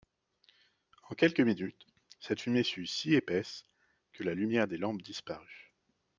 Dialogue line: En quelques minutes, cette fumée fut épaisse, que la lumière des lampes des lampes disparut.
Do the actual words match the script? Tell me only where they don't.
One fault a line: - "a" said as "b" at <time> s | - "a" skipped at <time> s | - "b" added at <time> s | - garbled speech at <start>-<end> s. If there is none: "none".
- "si" added at 2.9 s
- "des lampes" skipped at 5.0 s